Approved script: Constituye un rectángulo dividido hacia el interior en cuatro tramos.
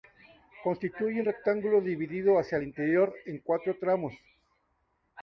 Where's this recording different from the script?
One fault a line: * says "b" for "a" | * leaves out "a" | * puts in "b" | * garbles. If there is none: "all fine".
all fine